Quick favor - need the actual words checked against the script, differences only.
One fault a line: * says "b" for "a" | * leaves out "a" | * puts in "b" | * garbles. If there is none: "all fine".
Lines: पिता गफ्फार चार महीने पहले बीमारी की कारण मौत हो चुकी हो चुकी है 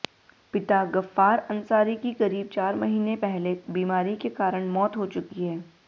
* puts in "अंसारी की करीब"
* says "के" for "की"
* leaves out "हो चुकी"